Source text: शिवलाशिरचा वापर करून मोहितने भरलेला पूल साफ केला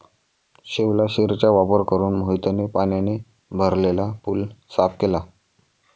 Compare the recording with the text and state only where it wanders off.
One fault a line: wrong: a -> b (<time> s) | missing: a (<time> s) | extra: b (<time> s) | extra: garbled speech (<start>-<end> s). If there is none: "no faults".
extra: पाण्याने (2.7 s)